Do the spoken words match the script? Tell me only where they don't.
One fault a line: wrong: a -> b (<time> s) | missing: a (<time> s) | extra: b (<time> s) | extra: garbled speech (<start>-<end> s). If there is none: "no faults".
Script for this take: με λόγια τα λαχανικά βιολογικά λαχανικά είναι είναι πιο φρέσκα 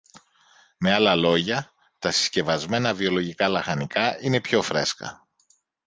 extra: άλλα (0.9 s)
wrong: λαχανικά -> συσκευασμένα (2.1 s)
missing: είναι (4.4 s)